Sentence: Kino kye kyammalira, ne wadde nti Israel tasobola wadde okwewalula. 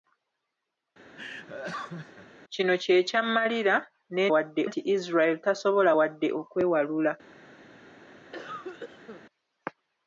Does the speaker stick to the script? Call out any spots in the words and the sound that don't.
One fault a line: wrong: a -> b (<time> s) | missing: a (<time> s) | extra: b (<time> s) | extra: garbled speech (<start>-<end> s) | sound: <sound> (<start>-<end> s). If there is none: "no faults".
sound: laugh (1.1-2.3 s)
sound: cough (8.3-9.2 s)